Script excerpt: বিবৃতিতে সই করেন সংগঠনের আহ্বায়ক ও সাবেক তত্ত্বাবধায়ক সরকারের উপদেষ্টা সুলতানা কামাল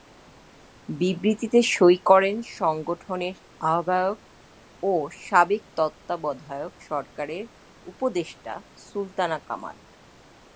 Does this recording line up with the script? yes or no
yes